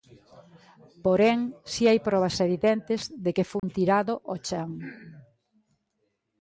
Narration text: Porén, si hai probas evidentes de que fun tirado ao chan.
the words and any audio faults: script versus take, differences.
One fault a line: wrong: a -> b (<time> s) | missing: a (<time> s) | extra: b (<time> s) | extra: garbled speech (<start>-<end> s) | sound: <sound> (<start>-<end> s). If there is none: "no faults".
sound: dropout (3.6-3.6 s)